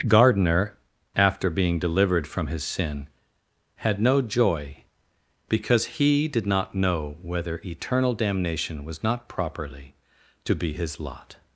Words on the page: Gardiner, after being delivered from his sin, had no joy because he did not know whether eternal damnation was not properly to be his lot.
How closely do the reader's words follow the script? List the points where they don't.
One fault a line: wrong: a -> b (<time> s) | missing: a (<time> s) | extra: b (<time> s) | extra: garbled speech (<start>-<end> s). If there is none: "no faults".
no faults